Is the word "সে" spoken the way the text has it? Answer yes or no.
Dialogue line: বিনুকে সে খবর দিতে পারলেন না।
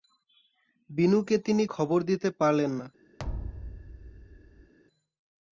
no